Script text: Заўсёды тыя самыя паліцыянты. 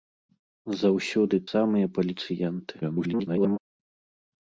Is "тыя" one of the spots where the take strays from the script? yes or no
yes